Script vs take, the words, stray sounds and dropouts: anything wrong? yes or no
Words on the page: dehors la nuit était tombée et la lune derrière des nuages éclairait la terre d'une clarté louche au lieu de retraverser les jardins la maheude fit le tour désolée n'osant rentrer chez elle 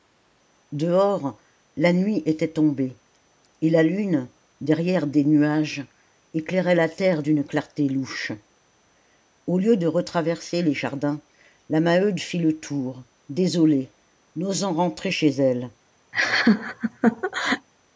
yes